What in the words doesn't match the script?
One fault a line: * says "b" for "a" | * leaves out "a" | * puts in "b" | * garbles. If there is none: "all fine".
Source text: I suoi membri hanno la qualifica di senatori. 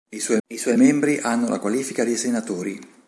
* puts in "I suoi"